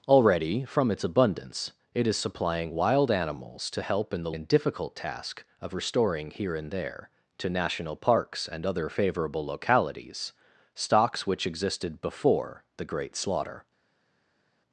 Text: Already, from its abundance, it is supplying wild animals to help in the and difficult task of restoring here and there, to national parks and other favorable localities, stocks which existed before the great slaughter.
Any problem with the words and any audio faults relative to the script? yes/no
no